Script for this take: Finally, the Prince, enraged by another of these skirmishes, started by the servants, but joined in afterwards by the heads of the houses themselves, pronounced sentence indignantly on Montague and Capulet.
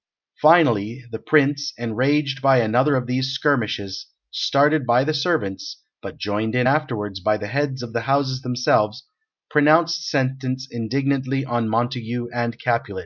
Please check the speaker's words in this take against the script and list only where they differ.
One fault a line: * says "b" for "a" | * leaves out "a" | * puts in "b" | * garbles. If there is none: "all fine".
all fine